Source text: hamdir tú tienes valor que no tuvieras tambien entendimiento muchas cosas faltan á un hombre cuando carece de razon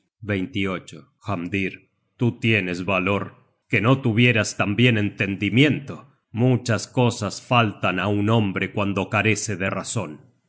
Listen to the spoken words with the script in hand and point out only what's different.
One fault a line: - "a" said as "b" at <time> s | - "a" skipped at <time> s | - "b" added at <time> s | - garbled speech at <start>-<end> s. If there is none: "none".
none